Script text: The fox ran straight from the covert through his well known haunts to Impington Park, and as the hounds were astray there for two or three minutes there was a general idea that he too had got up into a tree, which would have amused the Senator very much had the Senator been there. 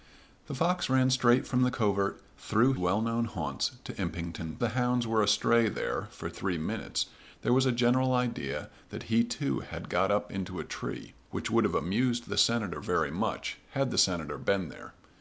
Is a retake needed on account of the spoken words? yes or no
yes